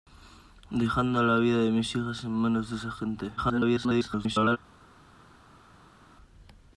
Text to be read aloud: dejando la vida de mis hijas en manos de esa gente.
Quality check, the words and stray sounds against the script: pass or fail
fail